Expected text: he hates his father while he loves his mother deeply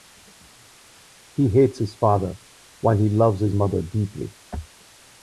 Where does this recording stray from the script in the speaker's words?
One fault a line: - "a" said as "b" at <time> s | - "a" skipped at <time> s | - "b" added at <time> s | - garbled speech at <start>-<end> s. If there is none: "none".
none